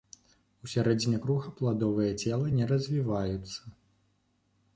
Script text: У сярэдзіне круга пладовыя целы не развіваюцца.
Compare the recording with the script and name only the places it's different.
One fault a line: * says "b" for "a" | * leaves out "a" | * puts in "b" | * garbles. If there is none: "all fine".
all fine